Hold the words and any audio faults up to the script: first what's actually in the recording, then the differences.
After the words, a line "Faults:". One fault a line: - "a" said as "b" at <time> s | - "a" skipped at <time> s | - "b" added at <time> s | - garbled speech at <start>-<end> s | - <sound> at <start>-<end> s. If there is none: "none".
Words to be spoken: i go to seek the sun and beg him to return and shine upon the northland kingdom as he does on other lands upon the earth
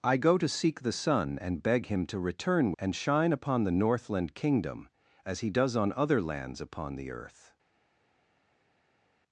i go to seek the sun and beg him to return and shine upon the northland kingdom as he does on other lands upon the earth
Faults:
none